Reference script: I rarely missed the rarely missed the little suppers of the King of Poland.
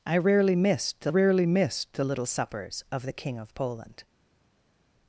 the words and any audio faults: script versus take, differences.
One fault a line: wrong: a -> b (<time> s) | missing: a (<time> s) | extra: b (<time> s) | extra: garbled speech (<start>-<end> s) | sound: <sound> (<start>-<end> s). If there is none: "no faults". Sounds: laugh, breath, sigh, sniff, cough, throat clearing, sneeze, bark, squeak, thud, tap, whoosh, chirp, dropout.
no faults